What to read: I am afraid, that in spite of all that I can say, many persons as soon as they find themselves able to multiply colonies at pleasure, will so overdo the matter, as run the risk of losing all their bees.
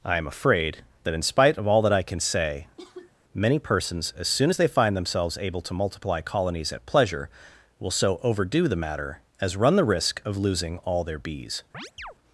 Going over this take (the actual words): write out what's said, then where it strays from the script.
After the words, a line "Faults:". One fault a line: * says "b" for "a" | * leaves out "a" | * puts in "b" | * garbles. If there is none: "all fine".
I am afraid, that in spite of all that I can say, many persons as soon as they find themselves able to multiply colonies at pleasure, will so overdo the matter, as run the risk of losing all their bees.
Faults:
all fine